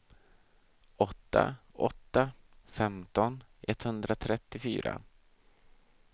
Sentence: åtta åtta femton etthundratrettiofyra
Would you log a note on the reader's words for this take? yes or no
no